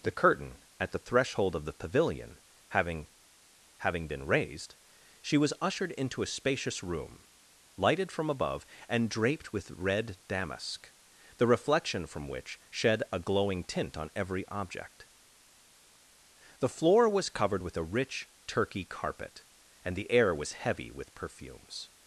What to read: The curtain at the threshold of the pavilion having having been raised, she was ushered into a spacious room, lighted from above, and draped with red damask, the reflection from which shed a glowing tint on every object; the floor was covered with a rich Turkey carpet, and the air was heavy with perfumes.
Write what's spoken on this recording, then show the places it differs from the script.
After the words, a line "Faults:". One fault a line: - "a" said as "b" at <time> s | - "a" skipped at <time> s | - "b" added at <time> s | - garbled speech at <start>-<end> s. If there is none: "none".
The curtain at the threshold of the pavilion having having been raised, she was ushered into a spacious room, lighted from above, and draped with red damask, the reflection from which shed a glowing tint on every object; the floor was covered with a rich Turkey carpet, and the air was heavy with perfumes.
Faults:
none